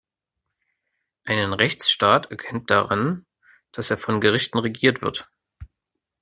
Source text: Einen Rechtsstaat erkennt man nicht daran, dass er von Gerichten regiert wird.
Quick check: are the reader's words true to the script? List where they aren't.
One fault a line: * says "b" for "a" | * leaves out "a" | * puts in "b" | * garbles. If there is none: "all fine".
* leaves out "man nicht"